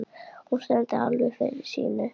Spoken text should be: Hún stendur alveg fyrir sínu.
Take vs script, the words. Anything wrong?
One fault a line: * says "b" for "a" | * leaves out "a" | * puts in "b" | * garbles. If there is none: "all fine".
all fine